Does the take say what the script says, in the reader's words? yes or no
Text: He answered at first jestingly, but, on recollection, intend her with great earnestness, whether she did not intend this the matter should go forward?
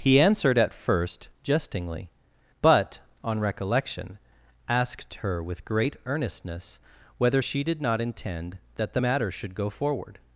no